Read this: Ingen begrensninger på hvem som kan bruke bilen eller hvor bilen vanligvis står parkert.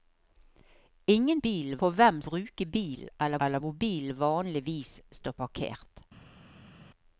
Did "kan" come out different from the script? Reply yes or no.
yes